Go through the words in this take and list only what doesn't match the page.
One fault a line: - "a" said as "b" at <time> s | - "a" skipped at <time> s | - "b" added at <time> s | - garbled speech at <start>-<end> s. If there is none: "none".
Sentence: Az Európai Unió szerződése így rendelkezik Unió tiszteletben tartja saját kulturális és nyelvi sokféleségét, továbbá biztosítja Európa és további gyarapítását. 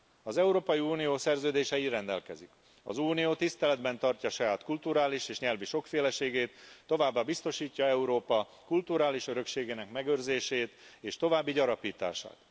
- "az" added at 2.8 s
- "kulturális örökségének megőrzését" added at 8.6 s